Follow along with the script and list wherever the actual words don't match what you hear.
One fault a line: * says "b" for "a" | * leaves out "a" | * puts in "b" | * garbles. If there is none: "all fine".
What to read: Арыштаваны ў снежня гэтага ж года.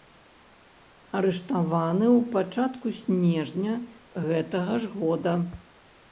* puts in "пачатку"